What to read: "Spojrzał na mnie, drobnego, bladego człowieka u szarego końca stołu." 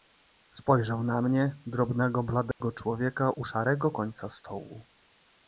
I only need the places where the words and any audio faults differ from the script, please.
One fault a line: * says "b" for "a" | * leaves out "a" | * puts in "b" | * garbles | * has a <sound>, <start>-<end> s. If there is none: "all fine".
* has a dropout, 2.5-2.6 s